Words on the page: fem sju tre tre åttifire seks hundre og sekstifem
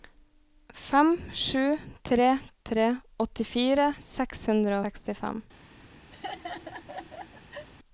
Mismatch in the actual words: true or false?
true